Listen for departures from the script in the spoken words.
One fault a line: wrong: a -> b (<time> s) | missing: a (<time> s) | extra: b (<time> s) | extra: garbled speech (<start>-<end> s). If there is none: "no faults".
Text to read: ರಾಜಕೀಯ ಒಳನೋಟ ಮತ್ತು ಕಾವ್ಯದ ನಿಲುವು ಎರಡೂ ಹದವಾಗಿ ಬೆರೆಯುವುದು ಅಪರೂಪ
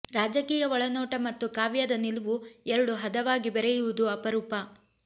no faults